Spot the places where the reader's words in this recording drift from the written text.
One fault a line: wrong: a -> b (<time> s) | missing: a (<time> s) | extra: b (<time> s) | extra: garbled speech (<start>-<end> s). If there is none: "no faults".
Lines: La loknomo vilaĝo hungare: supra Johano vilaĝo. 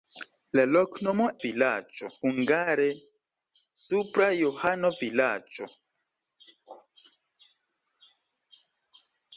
no faults